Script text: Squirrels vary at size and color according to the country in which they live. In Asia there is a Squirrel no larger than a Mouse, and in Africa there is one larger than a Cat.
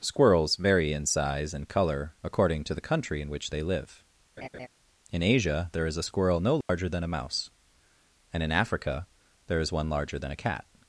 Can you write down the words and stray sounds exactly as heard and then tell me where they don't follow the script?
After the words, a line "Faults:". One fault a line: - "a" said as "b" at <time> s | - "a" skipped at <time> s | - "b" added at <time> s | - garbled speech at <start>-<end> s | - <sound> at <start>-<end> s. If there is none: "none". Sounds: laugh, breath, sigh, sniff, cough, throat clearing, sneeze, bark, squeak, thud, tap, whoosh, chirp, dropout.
Squirrels vary in size and color according to the country in which they live. In Asia there is a Squirrel no larger than a Mouse, and in Africa there is one larger than a Cat.
Faults:
- "at" said as "in" at 0.9 s
- laugh at 4.4-4.7 s
- dropout at 6.6-6.7 s